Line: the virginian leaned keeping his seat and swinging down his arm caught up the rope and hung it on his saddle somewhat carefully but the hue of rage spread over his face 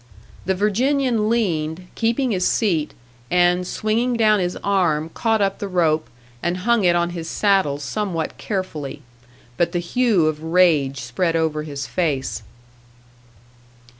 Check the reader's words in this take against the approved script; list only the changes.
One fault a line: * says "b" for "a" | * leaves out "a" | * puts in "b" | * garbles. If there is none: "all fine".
all fine